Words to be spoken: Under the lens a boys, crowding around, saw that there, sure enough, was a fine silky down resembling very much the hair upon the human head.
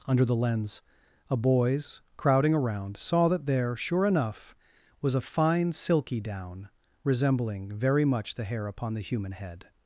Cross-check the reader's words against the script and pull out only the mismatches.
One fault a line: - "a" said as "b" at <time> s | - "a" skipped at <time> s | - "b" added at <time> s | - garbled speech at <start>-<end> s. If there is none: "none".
none